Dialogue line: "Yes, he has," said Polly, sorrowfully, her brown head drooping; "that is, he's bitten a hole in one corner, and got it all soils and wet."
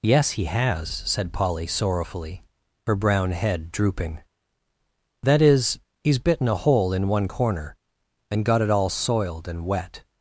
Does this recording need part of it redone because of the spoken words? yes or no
yes